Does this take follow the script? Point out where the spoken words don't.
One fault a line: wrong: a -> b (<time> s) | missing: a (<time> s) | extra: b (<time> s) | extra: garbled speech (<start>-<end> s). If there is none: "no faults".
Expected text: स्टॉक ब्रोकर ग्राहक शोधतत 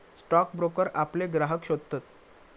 extra: आपले (1.0 s)